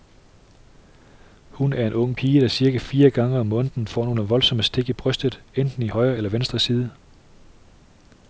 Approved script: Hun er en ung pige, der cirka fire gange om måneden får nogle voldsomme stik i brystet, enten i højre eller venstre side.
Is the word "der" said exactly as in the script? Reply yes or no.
yes